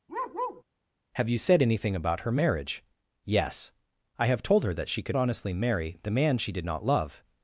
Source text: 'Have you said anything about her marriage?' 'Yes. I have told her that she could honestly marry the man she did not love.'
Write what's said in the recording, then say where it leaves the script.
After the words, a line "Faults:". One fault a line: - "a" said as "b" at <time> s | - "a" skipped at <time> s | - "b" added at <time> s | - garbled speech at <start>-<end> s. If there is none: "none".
'Have you said anything about her marriage?' 'Yes. I have told her that she could honestly marry the man she did not love.'
Faults:
none